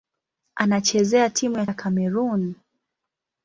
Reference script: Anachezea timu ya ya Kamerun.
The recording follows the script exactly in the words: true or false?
true